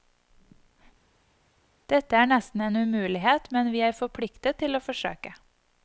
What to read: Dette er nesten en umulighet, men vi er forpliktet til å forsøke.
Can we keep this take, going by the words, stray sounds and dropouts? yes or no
yes